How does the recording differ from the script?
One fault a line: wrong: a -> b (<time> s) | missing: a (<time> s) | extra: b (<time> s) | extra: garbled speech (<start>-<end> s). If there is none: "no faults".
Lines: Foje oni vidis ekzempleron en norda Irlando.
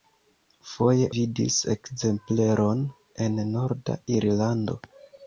missing: oni (1.1 s)